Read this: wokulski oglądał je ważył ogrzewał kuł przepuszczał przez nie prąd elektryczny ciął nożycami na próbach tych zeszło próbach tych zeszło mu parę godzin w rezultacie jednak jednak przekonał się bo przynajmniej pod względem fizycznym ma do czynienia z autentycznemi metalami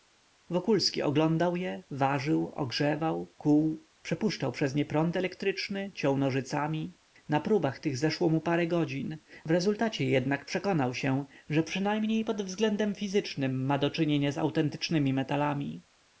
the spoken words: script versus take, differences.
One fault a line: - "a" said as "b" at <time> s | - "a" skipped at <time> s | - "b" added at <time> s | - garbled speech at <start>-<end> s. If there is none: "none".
- "próbach tych zeszło" skipped at 8.3 s
- "jednak" skipped at 10.4 s
- "bo" said as "że" at 11.5 s